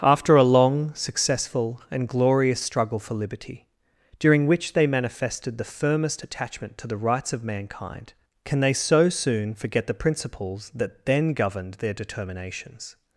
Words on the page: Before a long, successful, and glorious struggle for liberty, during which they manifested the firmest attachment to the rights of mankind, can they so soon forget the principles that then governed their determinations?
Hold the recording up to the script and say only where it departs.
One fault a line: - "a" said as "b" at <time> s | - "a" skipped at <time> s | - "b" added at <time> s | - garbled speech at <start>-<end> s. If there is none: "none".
- "Before" said as "After" at 0.0 s